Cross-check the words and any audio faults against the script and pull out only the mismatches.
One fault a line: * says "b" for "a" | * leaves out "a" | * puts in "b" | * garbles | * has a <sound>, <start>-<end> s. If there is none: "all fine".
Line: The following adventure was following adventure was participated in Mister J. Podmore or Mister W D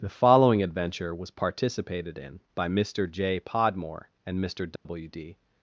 * leaves out "following adventure was"
* puts in "by"
* says "and" for "or"
* has a dropout, 4.8-4.9 s